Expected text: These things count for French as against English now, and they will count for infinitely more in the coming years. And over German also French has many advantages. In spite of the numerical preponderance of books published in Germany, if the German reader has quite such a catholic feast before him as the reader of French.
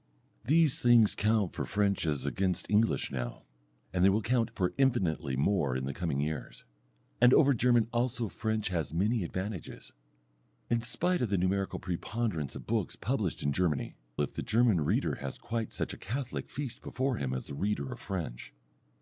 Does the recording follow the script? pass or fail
pass